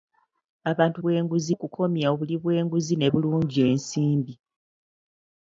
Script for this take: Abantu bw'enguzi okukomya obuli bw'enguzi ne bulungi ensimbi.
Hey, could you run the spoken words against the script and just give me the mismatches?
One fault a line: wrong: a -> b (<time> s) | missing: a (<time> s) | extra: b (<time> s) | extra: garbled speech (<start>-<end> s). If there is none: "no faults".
no faults